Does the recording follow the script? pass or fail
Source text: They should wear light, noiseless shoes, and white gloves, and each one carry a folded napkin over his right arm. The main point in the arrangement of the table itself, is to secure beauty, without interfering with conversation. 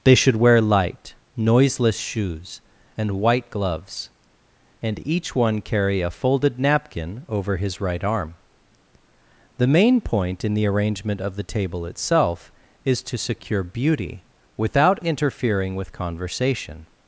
pass